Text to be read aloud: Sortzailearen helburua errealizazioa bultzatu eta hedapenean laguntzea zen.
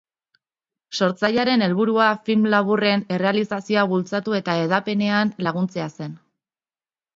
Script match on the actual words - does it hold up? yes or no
no